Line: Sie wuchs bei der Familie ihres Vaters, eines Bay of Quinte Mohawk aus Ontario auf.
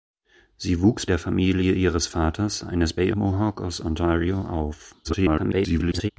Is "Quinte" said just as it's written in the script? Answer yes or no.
no